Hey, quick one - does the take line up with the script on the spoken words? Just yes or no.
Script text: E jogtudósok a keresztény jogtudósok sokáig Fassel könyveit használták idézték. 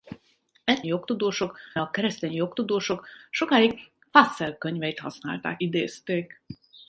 yes